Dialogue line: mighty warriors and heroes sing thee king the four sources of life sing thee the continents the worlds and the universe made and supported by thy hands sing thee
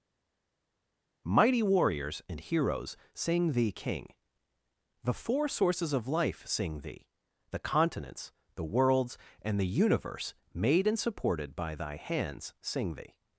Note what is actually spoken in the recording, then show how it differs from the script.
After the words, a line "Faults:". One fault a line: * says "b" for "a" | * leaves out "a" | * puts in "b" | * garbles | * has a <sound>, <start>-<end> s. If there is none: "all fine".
mighty warriors and heroes sing thee king the four sources of life sing thee the continents the worlds and the universe made and supported by thy hands sing thee
Faults:
all fine